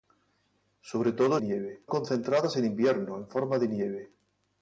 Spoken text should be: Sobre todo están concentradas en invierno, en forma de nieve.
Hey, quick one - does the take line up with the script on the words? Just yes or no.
no